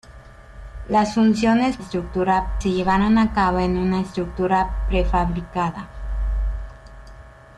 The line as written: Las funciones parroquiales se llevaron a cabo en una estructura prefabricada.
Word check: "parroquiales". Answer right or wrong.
wrong